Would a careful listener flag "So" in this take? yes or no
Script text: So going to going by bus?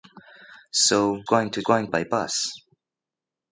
no